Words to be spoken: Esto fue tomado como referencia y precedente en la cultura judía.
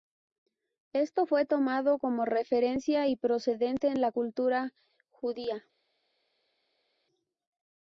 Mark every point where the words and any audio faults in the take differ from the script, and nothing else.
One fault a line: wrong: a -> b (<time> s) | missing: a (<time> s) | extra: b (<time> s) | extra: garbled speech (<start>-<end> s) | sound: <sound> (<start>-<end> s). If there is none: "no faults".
no faults